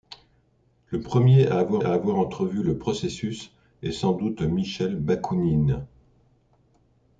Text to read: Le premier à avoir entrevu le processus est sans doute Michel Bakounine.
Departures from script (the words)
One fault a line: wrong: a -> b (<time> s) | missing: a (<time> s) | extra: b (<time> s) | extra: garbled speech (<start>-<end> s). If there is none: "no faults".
extra: à avoir (1.8 s)